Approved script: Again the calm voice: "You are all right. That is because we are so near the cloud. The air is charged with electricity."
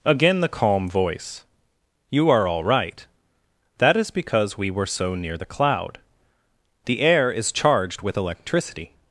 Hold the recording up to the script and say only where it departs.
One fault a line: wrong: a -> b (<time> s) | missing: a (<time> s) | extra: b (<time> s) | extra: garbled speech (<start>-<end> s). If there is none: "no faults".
wrong: are -> were (4.7 s)